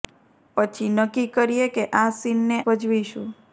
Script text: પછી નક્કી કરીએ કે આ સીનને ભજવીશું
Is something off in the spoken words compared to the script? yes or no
no